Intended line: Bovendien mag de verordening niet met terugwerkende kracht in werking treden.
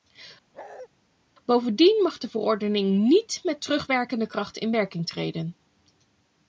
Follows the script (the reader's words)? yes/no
yes